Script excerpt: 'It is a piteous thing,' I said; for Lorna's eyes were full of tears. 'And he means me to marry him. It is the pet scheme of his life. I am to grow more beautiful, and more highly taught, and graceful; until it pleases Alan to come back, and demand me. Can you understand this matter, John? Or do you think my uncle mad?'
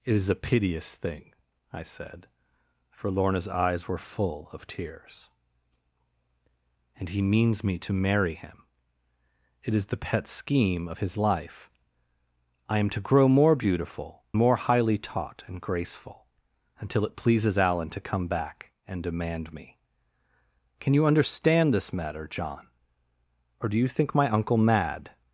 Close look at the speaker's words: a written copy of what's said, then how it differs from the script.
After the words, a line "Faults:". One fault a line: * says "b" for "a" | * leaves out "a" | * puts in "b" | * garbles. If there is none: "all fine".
'It is a piteous thing,' I said; for Lorna's eyes were full of tears. 'And he means me to marry him. It is the pet scheme of his life. I am to grow more beautiful, more highly taught, and graceful; until it pleases Alan to come back, and demand me. Can you understand this matter, John? Or do you think my uncle mad?'
Faults:
* leaves out "and"